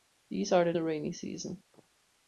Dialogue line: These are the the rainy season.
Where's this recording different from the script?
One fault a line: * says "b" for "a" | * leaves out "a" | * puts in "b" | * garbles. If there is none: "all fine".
all fine